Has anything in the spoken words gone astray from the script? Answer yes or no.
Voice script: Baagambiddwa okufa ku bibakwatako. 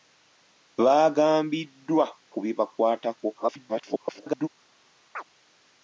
yes